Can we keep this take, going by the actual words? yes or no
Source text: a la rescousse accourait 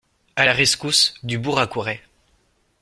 no